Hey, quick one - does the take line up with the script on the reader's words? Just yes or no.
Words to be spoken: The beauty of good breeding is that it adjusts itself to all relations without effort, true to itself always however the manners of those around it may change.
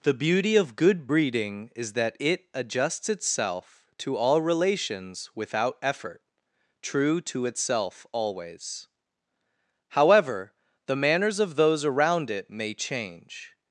yes